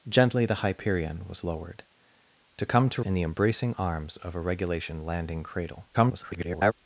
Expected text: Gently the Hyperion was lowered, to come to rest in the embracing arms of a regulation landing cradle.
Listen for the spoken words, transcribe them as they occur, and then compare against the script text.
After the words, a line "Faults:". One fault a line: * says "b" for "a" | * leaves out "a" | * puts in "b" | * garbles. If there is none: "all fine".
Gently the Hyperion was lowered, to come to in the embracing arms of a regulation landing cradle. [garbled]
Faults:
* leaves out "rest"
* garbles